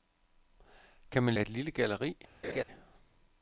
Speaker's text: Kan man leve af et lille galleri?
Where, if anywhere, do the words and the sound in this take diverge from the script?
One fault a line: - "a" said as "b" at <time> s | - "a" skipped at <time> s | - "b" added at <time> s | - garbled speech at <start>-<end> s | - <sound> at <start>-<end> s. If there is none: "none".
- "leve" skipped at 1.3 s
- laugh at 2.4-2.6 s